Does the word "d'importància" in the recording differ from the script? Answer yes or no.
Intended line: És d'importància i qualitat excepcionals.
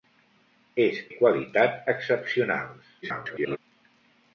yes